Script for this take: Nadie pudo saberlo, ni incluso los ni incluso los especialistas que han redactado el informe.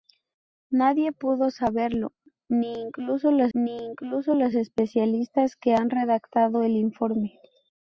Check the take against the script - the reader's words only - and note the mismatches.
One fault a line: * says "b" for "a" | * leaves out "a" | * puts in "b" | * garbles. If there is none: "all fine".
all fine